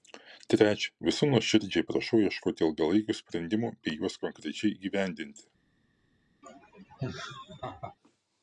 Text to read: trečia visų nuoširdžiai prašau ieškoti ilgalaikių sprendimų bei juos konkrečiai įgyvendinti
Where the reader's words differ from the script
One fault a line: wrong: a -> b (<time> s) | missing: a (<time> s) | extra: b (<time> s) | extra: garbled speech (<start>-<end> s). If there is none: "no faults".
no faults